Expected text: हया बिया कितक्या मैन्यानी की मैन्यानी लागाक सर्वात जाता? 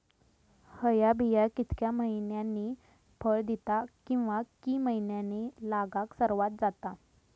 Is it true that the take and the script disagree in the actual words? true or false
true